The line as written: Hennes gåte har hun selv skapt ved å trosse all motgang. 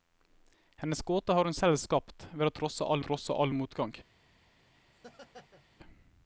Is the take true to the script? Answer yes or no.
no